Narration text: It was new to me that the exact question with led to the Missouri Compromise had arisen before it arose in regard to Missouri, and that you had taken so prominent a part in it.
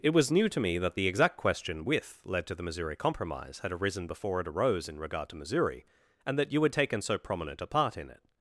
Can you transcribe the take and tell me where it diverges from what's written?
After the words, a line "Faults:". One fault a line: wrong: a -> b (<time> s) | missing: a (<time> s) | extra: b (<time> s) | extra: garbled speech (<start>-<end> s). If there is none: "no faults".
It was new to me that the exact question with led to the Missouri Compromise had arisen before it arose in regard to Missouri, and that you had taken so prominent a part in it.
Faults:
no faults